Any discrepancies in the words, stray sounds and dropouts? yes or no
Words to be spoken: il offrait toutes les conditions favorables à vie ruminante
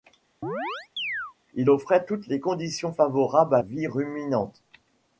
yes